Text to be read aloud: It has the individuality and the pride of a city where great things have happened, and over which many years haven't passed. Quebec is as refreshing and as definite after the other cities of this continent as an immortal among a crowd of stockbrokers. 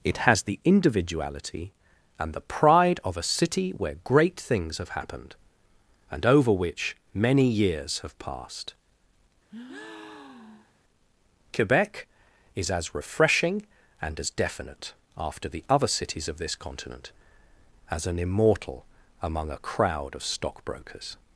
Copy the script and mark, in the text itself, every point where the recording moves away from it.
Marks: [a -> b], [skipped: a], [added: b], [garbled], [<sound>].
It has the individuality and the pride of a city where great things have happened, and over which many years [haven't -> have] passed. [breath] Quebec is as refreshing and as definite after the other cities of this continent as an immortal among a crowd of stockbrokers.